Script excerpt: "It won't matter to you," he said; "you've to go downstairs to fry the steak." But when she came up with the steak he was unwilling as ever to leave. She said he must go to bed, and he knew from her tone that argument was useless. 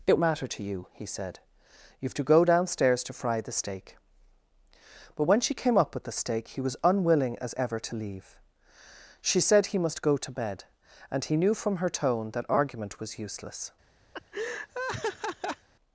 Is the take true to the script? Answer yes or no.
no